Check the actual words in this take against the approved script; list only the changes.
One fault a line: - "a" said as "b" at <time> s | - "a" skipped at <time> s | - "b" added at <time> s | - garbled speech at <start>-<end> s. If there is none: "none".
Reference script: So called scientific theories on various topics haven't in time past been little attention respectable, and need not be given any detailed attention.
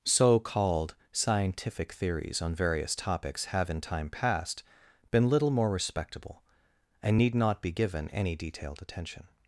- "haven't" said as "have" at 3.5 s
- "attention" said as "more" at 5.5 s